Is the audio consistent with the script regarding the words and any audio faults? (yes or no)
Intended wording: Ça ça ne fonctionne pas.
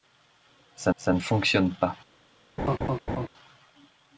no